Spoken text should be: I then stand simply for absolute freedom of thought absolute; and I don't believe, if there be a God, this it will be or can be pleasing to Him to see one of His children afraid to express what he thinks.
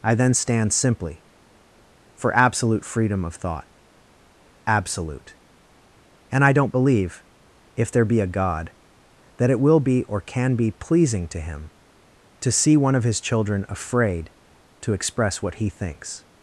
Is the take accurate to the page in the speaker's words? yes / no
no